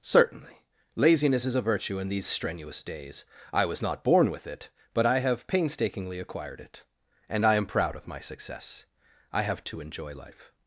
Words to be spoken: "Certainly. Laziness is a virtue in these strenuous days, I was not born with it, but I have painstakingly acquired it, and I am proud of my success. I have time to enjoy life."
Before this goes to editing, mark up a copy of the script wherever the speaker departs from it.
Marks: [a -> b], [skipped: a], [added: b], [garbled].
"Certainly. Laziness is a virtue in these strenuous days, I was not born with it, but I have painstakingly acquired it, and I am proud of my success. I have [skipped: time] to enjoy life."